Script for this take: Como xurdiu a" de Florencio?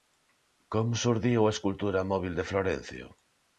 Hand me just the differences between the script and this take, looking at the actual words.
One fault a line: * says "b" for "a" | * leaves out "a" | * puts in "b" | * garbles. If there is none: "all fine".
* puts in "escultura móbil"